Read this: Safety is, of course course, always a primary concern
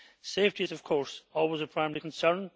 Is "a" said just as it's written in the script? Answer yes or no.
yes